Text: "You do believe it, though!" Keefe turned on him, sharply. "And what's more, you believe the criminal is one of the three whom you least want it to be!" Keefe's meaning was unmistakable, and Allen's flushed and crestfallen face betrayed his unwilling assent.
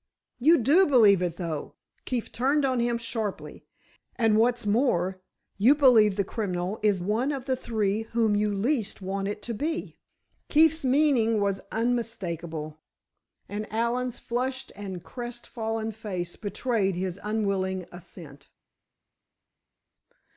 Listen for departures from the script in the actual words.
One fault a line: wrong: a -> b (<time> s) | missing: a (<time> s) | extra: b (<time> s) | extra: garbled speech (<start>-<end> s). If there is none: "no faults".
no faults